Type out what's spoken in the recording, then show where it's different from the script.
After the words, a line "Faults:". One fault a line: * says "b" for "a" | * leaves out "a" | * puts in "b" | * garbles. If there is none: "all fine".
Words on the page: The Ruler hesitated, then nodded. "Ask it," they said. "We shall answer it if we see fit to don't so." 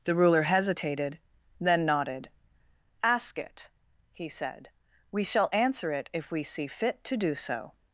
The Ruler hesitated, then nodded. "Ask it," he said. "We shall answer it if we see fit to do so."
Faults:
* says "he" for "they"
* says "do" for "don't"